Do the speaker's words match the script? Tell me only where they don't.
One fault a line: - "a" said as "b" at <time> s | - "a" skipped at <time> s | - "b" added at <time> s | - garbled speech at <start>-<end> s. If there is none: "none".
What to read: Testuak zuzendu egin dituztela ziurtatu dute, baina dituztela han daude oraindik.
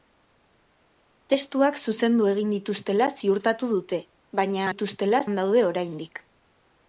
none